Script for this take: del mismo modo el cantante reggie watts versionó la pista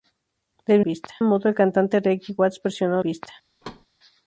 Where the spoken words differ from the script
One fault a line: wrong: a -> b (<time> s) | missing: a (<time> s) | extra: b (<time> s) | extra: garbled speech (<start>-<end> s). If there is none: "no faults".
wrong: mismo -> pista (0.8 s)
missing: la (3.0 s)